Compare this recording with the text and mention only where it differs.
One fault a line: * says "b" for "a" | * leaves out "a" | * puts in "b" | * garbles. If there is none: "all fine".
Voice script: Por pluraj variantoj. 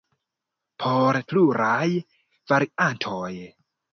all fine